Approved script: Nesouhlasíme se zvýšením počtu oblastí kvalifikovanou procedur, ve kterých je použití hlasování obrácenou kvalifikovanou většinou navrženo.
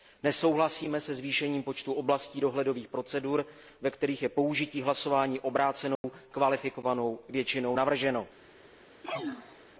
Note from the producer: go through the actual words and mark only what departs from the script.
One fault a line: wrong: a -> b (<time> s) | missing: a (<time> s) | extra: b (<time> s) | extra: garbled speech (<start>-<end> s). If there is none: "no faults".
wrong: kvalifikovanou -> dohledových (2.4 s)